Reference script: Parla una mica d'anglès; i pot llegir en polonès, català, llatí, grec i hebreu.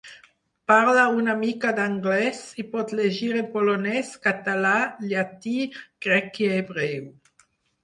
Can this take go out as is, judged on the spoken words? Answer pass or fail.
pass